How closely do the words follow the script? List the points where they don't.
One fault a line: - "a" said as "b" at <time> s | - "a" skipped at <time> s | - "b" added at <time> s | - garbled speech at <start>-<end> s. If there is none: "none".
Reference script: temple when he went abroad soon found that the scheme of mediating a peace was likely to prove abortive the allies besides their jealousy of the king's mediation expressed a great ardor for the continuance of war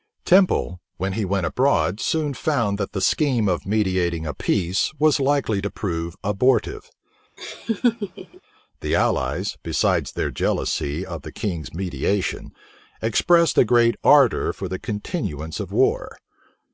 none